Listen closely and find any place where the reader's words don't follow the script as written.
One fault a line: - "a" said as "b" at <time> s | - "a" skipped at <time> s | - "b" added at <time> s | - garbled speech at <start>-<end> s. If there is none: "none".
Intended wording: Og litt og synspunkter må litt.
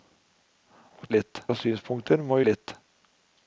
none